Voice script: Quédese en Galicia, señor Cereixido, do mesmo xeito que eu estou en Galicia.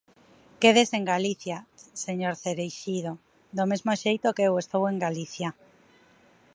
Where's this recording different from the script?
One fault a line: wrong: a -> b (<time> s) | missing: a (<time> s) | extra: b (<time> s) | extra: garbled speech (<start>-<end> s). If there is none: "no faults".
no faults